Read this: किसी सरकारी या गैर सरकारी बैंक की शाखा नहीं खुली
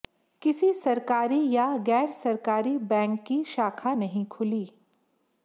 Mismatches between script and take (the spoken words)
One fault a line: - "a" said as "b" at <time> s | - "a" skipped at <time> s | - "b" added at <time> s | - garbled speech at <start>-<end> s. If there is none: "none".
none